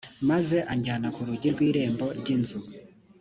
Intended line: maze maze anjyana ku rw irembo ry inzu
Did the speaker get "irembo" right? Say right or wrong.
right